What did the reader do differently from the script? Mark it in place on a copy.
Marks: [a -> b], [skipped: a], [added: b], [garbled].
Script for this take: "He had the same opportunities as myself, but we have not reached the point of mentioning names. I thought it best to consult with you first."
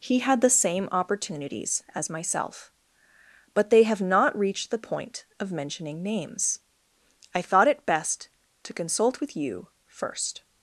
"He had the same opportunities as myself, but [we -> they] have not reached the point of mentioning names. I thought it best to consult with you first."